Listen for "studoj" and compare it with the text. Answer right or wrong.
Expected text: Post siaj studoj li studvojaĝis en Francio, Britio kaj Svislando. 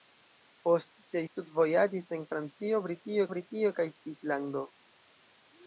wrong